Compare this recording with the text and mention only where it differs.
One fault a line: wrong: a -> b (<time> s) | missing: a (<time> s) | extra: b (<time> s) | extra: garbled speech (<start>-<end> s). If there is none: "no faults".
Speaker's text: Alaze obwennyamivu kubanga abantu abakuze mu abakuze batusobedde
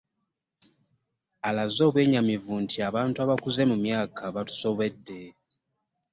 wrong: kubanga -> nti (2.6 s)
wrong: abakuze -> myaka (3.8 s)